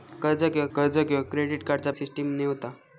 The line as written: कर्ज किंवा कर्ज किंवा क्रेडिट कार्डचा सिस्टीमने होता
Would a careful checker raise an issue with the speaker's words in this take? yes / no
no